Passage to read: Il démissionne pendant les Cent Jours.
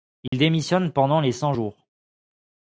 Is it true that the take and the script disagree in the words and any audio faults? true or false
true